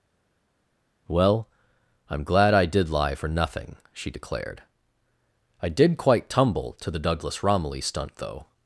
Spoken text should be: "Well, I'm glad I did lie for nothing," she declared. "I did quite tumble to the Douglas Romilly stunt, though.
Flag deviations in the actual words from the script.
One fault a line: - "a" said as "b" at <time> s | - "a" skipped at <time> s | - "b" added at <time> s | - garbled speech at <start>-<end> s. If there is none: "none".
none